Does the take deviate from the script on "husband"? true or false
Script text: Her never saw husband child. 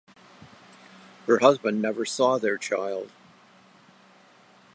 true